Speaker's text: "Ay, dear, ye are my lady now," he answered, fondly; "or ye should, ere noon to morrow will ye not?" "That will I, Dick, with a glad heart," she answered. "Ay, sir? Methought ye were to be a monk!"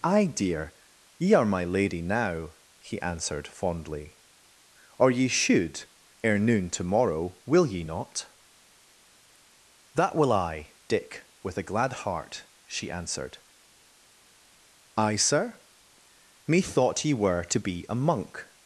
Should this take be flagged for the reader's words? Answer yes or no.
no